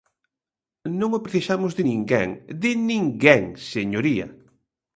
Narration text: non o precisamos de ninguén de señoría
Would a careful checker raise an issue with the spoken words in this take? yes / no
yes